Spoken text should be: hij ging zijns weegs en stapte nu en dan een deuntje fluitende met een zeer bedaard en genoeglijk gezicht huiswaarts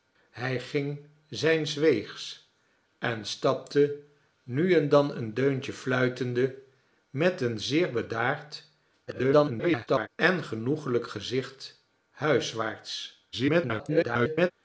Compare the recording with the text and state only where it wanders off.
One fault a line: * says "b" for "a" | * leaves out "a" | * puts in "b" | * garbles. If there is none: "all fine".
* garbles
* garbles